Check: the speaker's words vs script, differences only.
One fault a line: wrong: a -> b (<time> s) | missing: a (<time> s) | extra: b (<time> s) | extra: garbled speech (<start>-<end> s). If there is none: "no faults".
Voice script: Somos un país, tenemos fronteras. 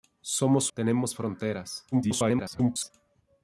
missing: un país (0.7 s)
extra: garbled speech (1.9-2.9 s)